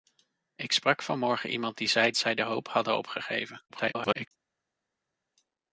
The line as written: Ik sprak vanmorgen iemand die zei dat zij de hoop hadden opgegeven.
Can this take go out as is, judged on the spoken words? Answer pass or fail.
fail